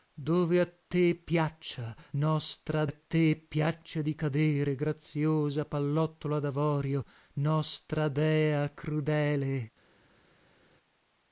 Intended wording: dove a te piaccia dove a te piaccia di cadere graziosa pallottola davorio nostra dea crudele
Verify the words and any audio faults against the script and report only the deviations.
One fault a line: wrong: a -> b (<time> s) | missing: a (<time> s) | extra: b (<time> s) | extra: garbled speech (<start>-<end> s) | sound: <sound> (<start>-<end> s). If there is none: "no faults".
wrong: dove -> nostra (2.1 s)